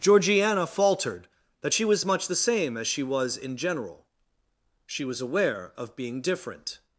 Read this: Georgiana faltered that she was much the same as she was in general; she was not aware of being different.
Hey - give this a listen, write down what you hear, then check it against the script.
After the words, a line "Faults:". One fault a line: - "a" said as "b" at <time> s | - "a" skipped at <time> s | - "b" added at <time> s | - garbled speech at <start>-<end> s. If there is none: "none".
Georgiana faltered that she was much the same as she was in general; she was aware of being different.
Faults:
- "not" skipped at 5.2 s